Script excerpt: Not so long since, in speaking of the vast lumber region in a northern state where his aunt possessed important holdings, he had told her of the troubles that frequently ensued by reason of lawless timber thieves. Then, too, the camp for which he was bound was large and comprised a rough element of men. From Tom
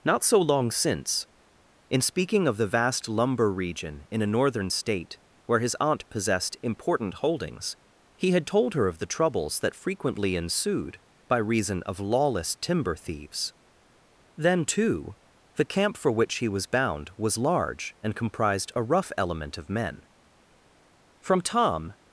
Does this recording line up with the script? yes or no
yes